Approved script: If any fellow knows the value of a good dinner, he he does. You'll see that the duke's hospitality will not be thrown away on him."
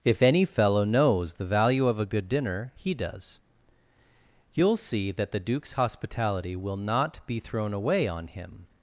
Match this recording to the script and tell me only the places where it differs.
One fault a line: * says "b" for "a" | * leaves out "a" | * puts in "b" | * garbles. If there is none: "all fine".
* leaves out "he"